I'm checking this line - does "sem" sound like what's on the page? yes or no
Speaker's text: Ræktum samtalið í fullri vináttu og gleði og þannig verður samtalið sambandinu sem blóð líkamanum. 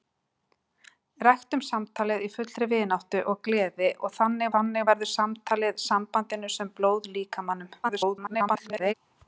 yes